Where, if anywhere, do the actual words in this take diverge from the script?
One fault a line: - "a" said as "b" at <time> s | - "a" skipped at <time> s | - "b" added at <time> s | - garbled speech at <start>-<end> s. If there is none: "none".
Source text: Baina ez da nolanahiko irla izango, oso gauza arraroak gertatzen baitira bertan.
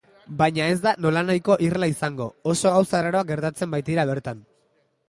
none